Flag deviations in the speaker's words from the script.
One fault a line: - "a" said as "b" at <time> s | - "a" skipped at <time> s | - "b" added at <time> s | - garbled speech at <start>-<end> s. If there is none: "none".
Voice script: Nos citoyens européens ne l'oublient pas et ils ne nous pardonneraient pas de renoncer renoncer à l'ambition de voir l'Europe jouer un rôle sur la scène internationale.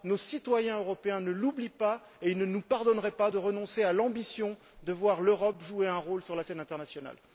- "renoncer" skipped at 3.8 s